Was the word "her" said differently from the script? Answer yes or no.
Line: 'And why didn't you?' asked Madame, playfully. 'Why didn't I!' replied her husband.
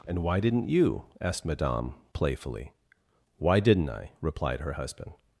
no